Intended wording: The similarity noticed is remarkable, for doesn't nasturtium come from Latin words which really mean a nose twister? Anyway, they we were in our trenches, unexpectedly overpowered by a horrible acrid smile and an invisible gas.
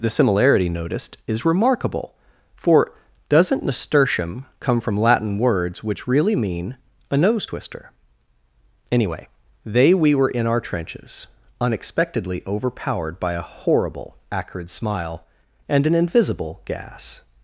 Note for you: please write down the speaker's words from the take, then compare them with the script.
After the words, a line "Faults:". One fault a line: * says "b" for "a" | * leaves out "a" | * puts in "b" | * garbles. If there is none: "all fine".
The similarity noticed is remarkable, for doesn't nasturtium come from Latin words which really mean a nose twister? Anyway, they we were in our trenches, unexpectedly overpowered by a horrible acrid smile and an invisible gas.
Faults:
all fine